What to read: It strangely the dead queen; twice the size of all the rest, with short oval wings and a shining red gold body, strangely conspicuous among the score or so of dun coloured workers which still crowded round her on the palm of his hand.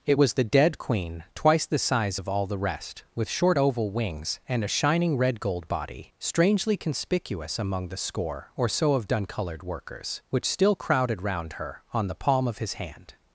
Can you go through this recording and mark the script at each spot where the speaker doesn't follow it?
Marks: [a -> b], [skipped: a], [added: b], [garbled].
It [strangely -> was] the dead queen; twice the size of all the rest, with short oval wings and a shining red gold body, strangely conspicuous among the score or so of dun coloured workers which still crowded round her on the palm of his hand.